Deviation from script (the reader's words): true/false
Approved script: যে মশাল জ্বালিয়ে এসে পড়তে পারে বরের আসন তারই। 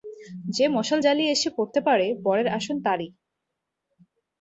false